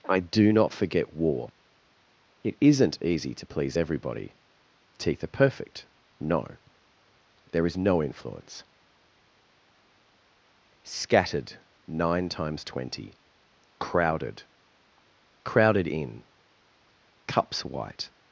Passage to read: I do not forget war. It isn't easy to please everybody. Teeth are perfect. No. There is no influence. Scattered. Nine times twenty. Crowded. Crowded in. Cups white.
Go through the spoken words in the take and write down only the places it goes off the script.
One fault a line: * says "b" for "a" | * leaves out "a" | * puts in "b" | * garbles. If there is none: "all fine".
all fine